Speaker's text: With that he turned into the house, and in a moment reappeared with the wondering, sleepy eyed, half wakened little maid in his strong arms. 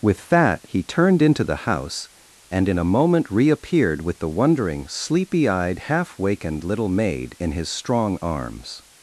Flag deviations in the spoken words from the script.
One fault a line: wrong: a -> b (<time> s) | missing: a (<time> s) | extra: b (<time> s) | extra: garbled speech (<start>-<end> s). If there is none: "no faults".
no faults